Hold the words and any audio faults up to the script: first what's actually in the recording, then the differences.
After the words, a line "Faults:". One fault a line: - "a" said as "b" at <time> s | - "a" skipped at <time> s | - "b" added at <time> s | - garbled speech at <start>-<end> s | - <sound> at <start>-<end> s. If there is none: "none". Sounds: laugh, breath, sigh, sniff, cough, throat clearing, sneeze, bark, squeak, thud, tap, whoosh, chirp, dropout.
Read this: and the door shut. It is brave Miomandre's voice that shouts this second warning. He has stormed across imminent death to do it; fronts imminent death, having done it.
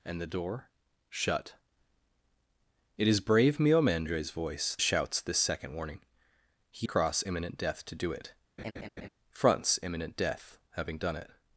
and the door shut. It is brave Miomandre's voice shouts this second warning. He across imminent death to do it; fronts imminent death, having done it.
Faults:
- "that" skipped at 4.8 s
- "has stormed" skipped at 6.9 s
- laugh at 8.6-9.1 s